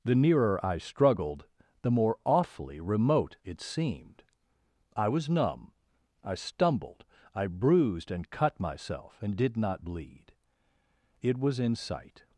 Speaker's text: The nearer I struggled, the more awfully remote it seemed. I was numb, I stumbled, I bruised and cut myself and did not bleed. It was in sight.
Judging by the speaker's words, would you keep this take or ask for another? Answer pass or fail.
pass